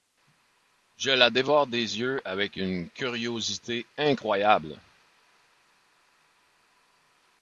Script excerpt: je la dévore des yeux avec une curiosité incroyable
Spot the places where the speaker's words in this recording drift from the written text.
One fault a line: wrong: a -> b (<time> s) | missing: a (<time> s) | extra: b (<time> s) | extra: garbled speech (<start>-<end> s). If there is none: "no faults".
no faults